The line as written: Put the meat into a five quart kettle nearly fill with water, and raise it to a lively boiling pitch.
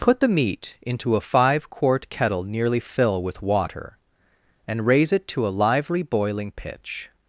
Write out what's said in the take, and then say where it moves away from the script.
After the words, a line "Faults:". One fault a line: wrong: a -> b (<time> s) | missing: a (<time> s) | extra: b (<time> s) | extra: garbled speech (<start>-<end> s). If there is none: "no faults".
Put the meat into a five quart kettle nearly fill with water, and raise it to a lively boiling pitch.
Faults:
no faults